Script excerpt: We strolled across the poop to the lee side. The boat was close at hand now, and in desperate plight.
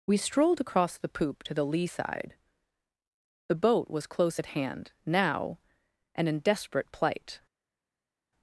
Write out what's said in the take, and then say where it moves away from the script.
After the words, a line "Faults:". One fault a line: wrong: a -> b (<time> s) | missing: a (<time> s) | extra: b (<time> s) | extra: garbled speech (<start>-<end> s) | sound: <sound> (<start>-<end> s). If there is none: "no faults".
We strolled across the poop to the lee side. The boat was close at hand now, and in desperate plight.
Faults:
no faults